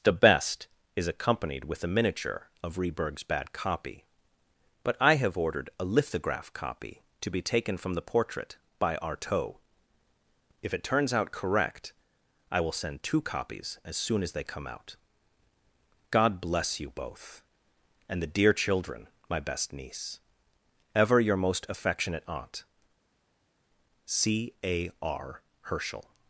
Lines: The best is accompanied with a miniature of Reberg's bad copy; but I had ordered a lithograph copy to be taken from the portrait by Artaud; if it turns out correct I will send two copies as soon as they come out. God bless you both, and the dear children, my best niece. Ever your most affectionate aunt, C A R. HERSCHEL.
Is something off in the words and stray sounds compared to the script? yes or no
yes